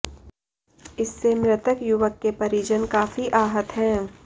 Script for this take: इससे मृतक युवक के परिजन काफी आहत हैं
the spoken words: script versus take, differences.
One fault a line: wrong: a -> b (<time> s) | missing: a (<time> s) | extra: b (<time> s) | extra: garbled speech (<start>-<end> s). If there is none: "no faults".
no faults